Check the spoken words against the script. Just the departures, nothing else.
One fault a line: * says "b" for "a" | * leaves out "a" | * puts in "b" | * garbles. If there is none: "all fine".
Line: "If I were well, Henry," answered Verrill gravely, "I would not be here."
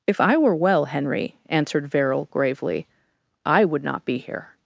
all fine